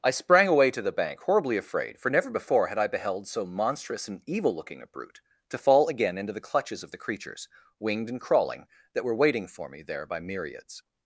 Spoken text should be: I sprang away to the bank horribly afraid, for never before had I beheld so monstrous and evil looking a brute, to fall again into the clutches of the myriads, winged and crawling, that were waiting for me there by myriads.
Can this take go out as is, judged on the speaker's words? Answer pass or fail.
fail